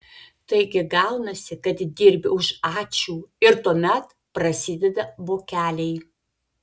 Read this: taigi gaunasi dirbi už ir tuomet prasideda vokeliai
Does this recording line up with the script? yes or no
no